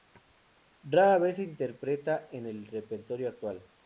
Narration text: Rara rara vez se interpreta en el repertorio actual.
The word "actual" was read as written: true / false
true